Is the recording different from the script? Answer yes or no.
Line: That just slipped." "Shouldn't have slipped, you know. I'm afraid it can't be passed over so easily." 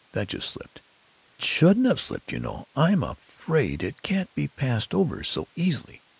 no